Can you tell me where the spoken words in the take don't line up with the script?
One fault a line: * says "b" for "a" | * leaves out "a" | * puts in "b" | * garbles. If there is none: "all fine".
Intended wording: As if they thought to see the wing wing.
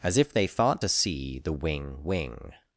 all fine